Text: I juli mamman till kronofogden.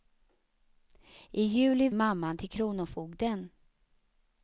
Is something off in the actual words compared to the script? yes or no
no